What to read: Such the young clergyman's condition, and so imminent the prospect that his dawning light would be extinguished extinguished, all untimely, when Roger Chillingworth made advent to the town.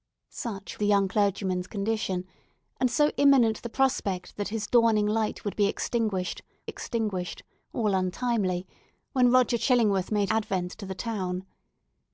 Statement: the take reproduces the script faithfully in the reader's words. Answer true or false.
true